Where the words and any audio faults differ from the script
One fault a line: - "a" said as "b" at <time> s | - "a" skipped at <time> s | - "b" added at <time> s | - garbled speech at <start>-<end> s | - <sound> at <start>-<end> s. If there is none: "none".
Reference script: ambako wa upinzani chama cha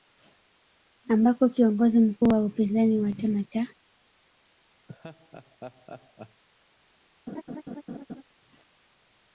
- "kiongozi mkuu" added at 1.5 s
- "wa" added at 3.0 s
- laugh at 4.9-6.4 s
- laugh at 7.3-8.2 s